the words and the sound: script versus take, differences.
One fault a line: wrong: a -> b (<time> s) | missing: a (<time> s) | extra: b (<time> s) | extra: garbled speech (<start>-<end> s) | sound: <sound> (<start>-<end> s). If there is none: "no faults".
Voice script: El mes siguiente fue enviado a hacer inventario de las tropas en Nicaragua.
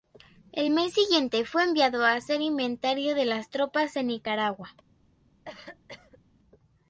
sound: cough (5.4-6.2 s)